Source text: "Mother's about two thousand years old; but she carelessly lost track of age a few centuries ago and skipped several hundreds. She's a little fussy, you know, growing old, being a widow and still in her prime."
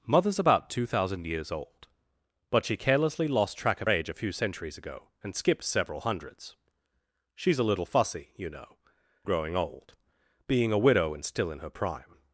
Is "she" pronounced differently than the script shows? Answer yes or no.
no